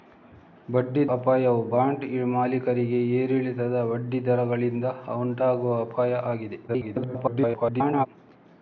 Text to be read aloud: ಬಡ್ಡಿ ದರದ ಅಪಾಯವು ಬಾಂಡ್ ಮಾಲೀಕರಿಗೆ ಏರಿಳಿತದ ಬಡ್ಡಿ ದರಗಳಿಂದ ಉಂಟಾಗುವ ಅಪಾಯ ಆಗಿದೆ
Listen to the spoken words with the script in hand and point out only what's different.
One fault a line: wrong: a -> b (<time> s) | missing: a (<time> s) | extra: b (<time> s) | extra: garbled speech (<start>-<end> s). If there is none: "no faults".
missing: ದರದ (1.0 s)
extra: garbled speech (6.7-8.1 s)